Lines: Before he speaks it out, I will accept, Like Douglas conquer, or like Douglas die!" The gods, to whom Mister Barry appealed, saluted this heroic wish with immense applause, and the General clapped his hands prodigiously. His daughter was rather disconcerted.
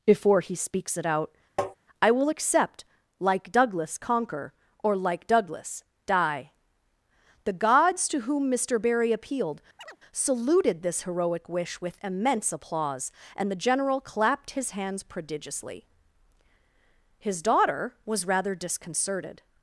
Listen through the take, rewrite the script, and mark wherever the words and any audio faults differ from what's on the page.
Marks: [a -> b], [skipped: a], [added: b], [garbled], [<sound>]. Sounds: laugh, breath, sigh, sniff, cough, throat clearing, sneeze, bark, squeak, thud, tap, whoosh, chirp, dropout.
Before he speaks it out, [tap] I will accept, Like Douglas conquer, or like Douglas die!" The gods, to whom Mister Barry appealed, [chirp] saluted this heroic wish with immense applause, and the General clapped his hands prodigiously. His daughter was rather disconcerted.